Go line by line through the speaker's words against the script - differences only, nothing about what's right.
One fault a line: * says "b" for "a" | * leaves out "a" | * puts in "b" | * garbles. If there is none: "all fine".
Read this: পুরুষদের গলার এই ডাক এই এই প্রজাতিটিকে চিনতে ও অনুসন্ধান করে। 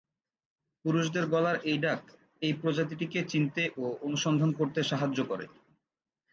* leaves out "এই"
* puts in "করতে সাহায্য"